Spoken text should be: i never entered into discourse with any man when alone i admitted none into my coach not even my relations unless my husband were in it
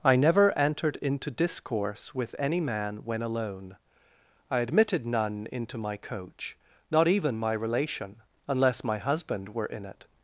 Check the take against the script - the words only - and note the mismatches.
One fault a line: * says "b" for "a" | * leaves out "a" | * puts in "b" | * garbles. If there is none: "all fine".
* says "relation" for "relations"